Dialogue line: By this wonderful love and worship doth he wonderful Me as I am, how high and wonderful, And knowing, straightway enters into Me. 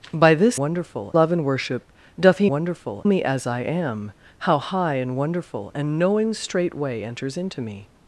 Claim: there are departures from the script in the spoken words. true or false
false